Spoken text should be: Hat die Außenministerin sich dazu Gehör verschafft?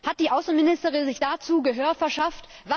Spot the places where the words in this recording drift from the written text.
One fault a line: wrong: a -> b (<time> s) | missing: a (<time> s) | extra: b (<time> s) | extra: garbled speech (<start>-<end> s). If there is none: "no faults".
no faults